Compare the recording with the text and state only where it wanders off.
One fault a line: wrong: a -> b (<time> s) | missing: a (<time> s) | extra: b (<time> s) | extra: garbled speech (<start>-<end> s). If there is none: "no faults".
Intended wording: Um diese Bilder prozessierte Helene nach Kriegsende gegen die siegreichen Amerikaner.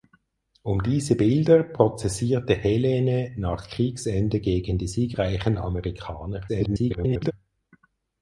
extra: garbled speech (6.5-7.3 s)